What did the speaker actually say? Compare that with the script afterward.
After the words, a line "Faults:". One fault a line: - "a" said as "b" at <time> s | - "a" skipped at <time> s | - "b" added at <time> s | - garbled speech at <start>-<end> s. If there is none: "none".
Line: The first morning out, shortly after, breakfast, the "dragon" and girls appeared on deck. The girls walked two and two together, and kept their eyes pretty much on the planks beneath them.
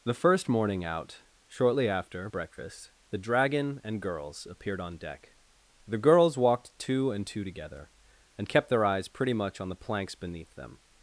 The first morning out, shortly after, breakfast, the "dragon" and girls appeared on deck. The girls walked two and two together, and kept their eyes pretty much on the planks beneath them.
Faults:
none